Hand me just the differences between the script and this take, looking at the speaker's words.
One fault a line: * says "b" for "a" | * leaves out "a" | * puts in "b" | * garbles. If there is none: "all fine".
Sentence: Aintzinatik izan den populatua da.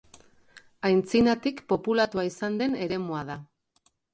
* puts in "populatua"
* says "eremua" for "populatua"